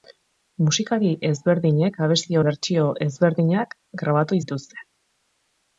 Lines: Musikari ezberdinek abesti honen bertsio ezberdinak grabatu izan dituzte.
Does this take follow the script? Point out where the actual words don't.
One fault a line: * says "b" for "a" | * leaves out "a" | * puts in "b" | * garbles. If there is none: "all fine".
* leaves out "honen"
* leaves out "izan"